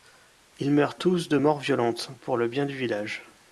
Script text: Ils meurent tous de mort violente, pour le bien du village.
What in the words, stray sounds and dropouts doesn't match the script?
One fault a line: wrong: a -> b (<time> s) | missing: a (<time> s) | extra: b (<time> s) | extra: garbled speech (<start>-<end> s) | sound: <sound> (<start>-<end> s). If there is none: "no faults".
no faults